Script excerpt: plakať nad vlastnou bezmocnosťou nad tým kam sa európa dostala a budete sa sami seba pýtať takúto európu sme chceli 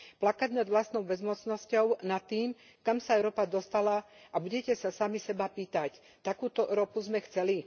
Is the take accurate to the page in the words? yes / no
yes